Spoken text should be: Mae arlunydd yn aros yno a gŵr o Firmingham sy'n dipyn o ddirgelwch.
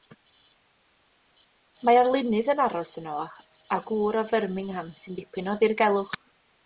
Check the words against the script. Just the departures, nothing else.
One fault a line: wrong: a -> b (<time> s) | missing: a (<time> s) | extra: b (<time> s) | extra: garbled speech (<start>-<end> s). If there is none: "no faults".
no faults